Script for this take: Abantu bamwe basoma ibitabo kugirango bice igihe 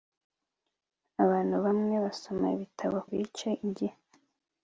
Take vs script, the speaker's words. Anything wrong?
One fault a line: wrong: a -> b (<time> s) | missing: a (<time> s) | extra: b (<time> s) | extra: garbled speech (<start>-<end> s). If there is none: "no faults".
missing: kugirango (3.0 s)